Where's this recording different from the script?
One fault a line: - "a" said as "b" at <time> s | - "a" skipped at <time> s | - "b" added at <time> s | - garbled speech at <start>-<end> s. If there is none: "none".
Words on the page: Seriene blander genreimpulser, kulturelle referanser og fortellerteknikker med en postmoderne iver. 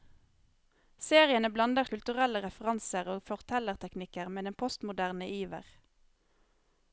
- "genreimpulser" skipped at 1.9 s